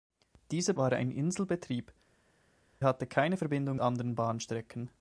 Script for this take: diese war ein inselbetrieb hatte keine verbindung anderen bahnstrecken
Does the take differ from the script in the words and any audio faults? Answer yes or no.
no